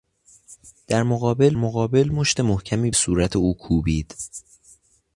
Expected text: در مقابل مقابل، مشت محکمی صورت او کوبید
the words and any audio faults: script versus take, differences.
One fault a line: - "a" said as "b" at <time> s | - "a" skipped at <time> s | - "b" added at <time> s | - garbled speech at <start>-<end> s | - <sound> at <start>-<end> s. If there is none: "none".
none